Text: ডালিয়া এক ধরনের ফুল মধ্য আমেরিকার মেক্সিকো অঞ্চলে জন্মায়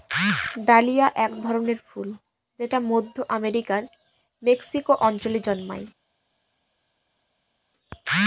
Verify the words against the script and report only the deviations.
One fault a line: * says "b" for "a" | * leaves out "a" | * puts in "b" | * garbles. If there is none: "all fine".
* puts in "যেটা"